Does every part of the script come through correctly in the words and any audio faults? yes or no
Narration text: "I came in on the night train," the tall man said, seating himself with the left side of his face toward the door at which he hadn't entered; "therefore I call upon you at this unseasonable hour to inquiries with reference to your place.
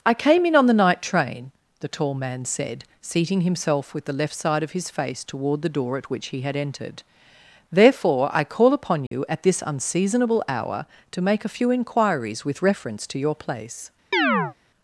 no